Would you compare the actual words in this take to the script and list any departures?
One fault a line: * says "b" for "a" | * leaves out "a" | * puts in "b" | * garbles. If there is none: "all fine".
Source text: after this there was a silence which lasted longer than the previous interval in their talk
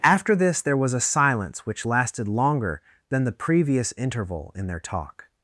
all fine